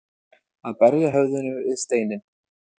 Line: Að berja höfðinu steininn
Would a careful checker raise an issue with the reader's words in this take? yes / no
yes